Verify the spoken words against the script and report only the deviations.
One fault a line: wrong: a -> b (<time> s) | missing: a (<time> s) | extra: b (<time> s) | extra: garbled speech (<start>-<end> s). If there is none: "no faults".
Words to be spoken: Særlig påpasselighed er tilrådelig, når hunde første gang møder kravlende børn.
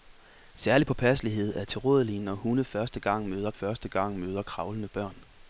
extra: første gang møder (3.5 s)